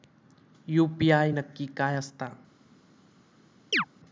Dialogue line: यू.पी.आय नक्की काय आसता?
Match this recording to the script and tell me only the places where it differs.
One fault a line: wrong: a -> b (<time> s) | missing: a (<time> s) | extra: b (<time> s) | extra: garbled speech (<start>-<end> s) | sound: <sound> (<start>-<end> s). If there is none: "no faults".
sound: chirp (3.7-3.9 s)